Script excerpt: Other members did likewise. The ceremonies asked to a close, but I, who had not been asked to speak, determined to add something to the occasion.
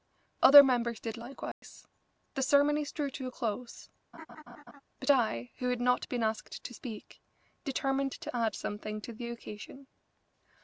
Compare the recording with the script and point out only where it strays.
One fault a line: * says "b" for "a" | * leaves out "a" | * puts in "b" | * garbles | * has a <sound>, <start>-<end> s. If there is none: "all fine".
* has a dropout, 1.5-1.6 s
* says "drew" for "asked"
* has a laugh, 4.1-4.8 s